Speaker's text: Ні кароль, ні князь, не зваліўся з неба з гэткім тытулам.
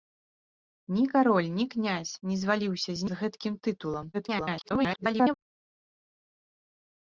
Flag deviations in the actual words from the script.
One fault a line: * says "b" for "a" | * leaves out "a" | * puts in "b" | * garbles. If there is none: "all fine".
* leaves out "неба"
* garbles